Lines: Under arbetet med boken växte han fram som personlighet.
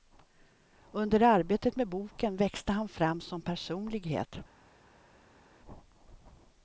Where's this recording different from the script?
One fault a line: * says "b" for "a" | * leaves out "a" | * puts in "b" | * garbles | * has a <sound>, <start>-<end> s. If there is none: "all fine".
all fine